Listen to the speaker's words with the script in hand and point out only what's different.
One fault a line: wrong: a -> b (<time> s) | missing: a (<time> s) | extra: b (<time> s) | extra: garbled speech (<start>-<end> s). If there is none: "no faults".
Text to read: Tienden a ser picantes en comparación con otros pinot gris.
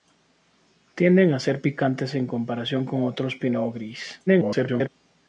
extra: garbled speech (4.3-4.9 s)